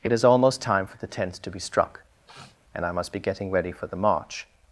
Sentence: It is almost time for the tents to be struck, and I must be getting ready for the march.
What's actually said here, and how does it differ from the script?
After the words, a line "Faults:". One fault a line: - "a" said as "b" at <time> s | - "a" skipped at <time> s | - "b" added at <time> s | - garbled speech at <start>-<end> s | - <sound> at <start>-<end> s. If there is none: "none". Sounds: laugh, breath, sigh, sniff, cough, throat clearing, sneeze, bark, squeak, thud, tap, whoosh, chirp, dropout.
It is almost time for the tents to be struck, and I must be getting ready for the march.
Faults:
- sniff at 2.3-2.6 s